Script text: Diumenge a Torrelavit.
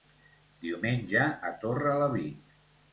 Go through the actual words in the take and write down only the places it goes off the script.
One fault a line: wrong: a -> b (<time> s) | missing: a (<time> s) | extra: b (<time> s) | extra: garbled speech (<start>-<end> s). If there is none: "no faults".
no faults